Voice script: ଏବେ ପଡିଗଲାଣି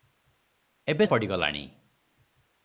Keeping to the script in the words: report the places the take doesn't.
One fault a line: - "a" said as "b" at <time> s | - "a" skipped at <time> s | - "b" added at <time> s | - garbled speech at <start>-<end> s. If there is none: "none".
none